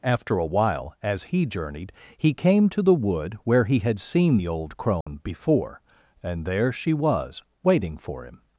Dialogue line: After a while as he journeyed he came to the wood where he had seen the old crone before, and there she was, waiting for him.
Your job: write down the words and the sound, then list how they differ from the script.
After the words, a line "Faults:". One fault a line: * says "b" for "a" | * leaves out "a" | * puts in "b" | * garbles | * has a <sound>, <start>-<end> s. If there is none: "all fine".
After a while as he journeyed he came to the wood where he had seen the old crone before, and there she was, waiting for him.
Faults:
* has a dropout, 5.0-5.1 s